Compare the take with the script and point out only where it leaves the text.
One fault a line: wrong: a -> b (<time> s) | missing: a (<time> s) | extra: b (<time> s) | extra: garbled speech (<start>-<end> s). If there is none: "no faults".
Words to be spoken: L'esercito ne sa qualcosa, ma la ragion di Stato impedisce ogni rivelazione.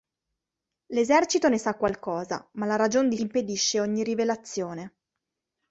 missing: Stato (3.2 s)